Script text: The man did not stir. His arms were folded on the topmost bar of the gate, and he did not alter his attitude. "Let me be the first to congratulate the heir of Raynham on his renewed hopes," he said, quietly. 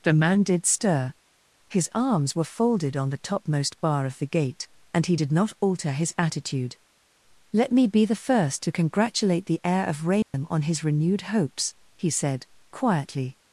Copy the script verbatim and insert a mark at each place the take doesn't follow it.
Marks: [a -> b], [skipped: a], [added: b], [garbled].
The man did [skipped: not] stir. His arms were folded on the topmost bar of the gate, and he did not alter his attitude. "Let me be the first to congratulate the heir of Raynham on his renewed hopes," he said, quietly.